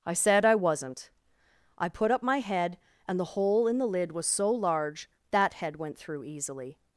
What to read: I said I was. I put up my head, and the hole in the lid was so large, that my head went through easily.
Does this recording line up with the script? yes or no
no